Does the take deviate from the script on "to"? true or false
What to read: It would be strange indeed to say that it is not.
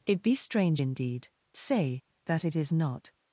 true